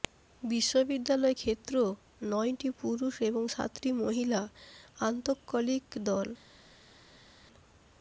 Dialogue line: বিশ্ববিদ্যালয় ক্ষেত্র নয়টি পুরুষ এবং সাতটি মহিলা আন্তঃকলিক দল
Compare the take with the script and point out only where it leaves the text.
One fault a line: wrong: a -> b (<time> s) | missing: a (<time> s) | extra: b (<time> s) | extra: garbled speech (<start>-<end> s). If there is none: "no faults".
no faults